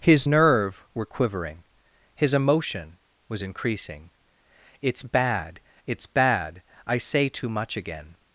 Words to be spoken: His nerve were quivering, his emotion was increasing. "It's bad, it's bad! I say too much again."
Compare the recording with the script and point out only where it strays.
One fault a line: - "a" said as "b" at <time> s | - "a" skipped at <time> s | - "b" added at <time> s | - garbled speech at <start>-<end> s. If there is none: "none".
none